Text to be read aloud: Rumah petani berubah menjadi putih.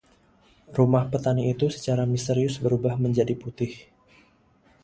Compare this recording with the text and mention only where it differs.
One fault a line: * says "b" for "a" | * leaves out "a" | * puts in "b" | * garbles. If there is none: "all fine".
* puts in "itu secara misterius"